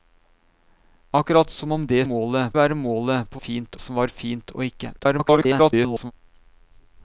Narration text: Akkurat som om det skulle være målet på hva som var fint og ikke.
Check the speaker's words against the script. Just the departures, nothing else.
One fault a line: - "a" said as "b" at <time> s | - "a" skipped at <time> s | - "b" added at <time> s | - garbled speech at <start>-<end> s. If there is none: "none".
- "skulle" said as "målet" at 2.0 s
- "hva" said as "fint" at 3.4 s
- garbled speech at 5.0-6.1 s